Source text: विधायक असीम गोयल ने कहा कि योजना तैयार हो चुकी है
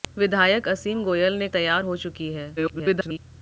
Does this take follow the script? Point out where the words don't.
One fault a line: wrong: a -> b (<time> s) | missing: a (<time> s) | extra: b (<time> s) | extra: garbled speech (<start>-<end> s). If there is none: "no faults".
missing: कहा कि योजना (1.5 s)
extra: garbled speech (2.6-3.2 s)